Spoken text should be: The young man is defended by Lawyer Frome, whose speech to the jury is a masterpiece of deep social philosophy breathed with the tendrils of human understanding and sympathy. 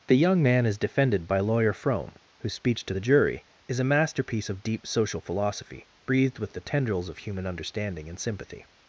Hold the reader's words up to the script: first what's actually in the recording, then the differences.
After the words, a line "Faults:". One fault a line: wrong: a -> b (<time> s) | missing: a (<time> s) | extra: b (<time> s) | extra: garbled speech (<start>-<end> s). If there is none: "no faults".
The young man is defended by Lawyer Frome, whose speech to the jury is a masterpiece of deep social philosophy breathed with the tendrils of human understanding and sympathy.
Faults:
no faults